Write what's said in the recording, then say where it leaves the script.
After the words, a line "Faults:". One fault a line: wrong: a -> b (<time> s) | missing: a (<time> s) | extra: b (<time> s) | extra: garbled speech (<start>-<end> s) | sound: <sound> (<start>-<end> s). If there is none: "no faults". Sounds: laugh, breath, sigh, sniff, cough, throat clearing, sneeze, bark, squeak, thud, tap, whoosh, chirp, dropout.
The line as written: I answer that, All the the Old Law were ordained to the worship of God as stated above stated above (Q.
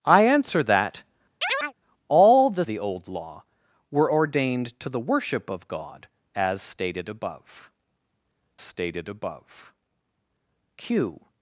I answer that, All the the Old Law were ordained to the worship of God as stated above stated above (Q.
Faults:
sound: chirp (1.4-1.7 s)